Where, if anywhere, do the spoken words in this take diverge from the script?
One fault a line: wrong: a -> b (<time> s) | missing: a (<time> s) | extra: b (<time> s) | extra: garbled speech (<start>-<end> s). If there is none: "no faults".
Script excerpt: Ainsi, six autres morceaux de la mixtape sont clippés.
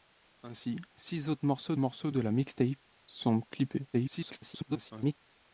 extra: morceaux (1.8 s)
extra: garbled speech (3.9-5.1 s)